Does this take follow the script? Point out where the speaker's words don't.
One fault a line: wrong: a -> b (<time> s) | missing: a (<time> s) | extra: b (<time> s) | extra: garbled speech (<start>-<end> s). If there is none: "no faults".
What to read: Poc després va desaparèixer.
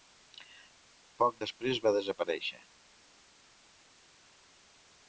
no faults